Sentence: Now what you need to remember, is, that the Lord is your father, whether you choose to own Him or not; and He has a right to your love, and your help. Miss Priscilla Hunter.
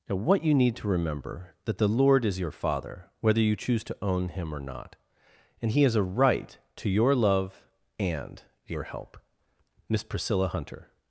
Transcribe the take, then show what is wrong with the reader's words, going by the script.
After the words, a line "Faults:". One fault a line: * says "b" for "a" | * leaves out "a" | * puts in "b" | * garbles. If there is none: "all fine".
Now what you need to remember, that the Lord is your father, whether you choose to own Him or not; and He has a right to your love, and your help. Miss Priscilla Hunter.
Faults:
* leaves out "is"